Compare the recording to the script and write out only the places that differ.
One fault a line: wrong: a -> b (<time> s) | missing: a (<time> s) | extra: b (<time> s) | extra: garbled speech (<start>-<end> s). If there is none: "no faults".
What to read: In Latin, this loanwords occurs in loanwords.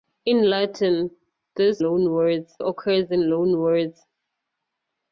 no faults